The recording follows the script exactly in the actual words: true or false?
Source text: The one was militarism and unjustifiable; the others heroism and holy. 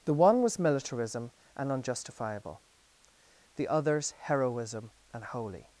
true